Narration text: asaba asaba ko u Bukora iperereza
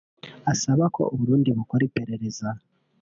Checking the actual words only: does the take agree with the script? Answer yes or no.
no